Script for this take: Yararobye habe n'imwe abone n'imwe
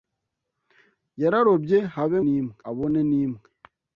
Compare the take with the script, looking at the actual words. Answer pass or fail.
pass